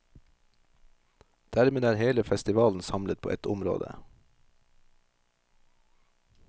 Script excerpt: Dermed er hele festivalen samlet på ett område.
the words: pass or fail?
pass